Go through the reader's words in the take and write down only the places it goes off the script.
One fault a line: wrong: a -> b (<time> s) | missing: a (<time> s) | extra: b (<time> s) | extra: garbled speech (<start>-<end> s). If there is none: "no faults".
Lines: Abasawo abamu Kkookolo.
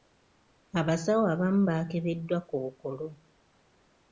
extra: baakebeddwa (1.7 s)